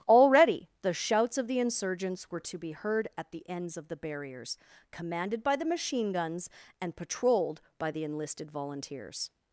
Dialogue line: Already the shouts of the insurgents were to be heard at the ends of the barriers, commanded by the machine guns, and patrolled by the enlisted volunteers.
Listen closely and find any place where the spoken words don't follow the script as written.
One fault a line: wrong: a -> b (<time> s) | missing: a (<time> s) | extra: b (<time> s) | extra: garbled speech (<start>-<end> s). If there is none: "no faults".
no faults